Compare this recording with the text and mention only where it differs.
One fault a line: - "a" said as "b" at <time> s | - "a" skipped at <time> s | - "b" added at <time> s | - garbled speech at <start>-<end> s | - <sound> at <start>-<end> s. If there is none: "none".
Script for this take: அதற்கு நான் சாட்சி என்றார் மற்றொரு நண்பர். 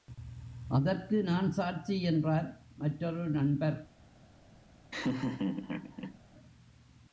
- laugh at 4.9-6.2 s